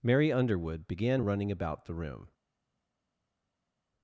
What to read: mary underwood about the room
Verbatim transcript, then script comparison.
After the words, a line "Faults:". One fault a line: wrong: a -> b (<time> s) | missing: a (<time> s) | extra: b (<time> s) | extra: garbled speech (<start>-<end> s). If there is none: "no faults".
mary underwood began running about the room
Faults:
extra: began running (0.9 s)